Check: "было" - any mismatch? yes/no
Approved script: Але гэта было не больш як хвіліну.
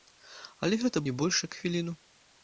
yes